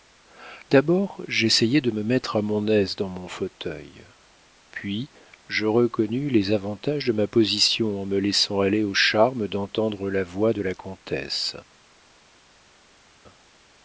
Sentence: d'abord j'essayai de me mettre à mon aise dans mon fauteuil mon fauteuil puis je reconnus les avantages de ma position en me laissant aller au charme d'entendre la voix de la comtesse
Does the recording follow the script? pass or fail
fail